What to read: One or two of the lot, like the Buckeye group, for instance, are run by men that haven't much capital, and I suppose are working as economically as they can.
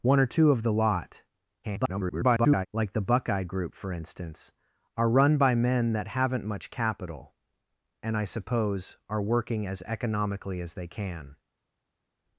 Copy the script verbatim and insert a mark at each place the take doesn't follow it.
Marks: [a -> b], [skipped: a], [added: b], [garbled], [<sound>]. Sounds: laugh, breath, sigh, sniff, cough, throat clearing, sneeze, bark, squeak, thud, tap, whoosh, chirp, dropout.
One or two of the lot, [garbled] like the Buckeye group, for instance, are run by men that haven't much capital, and I suppose are working as economically as they can.